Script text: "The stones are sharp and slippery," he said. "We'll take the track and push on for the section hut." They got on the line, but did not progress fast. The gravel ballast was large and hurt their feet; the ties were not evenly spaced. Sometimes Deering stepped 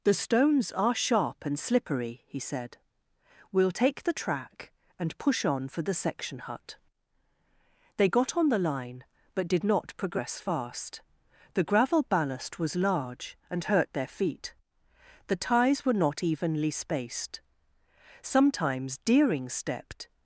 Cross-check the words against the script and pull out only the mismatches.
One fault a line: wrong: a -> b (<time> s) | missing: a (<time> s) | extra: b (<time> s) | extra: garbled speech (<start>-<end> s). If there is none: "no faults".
no faults